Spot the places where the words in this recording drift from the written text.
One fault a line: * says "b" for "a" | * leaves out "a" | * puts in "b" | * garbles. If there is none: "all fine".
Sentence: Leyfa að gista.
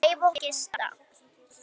all fine